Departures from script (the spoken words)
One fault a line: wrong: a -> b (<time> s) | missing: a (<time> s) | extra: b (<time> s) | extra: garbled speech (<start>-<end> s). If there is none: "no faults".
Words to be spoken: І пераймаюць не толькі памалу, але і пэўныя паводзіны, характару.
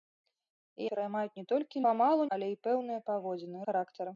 no faults